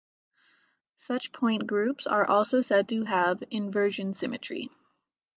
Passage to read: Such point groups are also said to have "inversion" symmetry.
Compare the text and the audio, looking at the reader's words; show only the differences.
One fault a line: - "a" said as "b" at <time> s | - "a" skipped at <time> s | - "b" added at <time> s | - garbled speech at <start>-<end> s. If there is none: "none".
none